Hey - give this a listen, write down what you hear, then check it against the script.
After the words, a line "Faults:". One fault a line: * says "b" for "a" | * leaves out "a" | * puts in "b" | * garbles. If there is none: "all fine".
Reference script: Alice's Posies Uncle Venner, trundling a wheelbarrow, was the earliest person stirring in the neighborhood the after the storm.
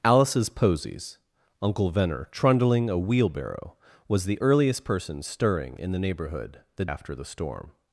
Alice's Posies Uncle Venner, trundling a wheelbarrow, was the earliest person stirring in the neighborhood the after the storm.
Faults:
all fine